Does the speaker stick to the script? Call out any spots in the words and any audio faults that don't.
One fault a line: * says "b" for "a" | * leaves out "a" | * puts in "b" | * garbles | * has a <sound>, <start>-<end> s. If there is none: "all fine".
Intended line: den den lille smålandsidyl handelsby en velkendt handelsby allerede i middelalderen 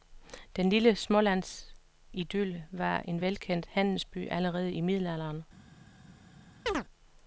* leaves out "den"
* says "var" for "handelsby"
* has a chirp, 6.7-6.8 s